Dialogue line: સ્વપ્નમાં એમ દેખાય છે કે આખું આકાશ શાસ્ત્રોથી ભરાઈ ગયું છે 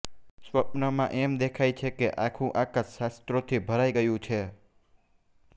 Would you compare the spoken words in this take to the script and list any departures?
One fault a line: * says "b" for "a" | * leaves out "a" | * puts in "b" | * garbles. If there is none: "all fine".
all fine